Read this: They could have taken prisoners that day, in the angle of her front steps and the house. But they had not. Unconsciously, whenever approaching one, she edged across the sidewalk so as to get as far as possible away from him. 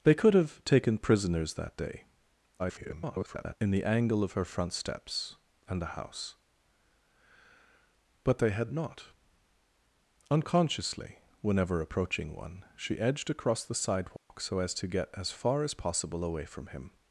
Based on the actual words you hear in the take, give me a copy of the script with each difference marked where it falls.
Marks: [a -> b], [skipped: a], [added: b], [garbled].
They could have taken prisoners that day, [garbled] in the angle of her front steps and the house. But they had not. Unconsciously, whenever approaching one, she edged across the sidewalk so as to get as far as possible away from him.